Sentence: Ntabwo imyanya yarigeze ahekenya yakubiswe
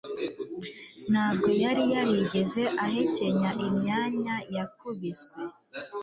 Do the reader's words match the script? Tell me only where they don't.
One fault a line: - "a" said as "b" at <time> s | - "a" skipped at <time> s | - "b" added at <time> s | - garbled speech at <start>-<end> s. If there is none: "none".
- "imyanya" said as "yari" at 1.6 s
- "imyanya" added at 3.7 s